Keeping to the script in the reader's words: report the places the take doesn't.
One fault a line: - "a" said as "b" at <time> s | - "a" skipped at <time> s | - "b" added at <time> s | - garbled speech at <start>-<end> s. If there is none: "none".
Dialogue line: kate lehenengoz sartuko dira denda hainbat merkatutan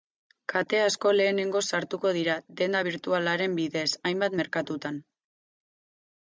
- "asko" added at 0.8 s
- "birtualaren bidez" added at 2.9 s